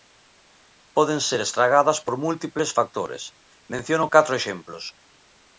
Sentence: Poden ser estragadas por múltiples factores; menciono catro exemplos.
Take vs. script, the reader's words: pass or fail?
pass